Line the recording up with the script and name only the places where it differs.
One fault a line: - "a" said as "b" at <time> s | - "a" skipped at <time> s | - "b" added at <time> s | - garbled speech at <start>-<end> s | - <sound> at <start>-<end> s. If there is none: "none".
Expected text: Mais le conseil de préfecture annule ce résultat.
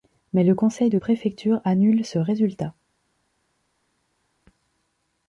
none